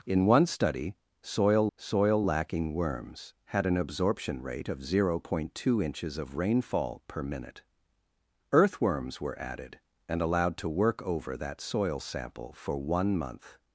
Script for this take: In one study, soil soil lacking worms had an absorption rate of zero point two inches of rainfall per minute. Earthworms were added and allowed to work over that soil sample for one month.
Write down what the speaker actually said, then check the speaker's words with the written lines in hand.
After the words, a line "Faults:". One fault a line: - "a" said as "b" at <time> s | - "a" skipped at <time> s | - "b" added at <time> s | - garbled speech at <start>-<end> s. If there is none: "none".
In one study, soil soil lacking worms had an absorption rate of zero point two inches of rainfall per minute. Earthworms were added and allowed to work over that soil sample for one month.
Faults:
none